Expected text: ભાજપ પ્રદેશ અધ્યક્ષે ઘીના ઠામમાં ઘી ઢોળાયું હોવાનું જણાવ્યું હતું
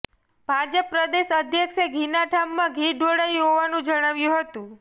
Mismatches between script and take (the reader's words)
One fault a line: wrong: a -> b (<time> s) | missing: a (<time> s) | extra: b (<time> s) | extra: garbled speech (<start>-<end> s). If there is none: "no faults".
no faults